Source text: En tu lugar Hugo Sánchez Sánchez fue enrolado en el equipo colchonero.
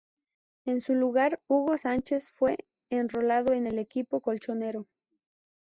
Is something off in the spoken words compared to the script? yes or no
yes